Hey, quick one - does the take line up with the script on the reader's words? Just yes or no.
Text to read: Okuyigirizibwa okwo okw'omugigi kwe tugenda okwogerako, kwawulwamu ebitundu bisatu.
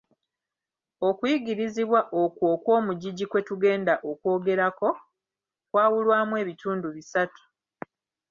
yes